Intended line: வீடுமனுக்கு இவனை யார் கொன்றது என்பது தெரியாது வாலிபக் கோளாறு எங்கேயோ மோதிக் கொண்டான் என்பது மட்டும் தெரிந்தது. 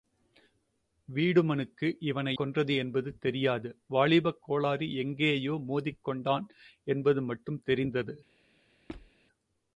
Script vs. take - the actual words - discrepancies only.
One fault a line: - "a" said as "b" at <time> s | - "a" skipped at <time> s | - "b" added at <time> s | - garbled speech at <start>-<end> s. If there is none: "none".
- "யார்" skipped at 2.4 s